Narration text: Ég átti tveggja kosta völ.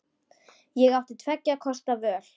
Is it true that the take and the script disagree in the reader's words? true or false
false